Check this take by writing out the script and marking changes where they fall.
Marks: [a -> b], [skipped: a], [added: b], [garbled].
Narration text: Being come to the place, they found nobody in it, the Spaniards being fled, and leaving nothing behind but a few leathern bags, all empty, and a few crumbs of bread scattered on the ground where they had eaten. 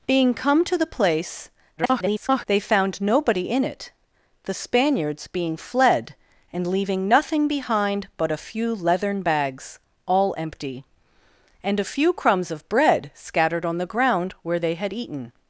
Being come to the place, [garbled] they found nobody in it, the Spaniards being fled, and leaving nothing behind but a few leathern bags, all empty, and a few crumbs of bread scattered on the ground where they had eaten.